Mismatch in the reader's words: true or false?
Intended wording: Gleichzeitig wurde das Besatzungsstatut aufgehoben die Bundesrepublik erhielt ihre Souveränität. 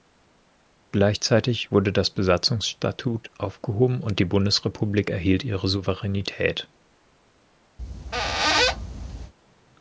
true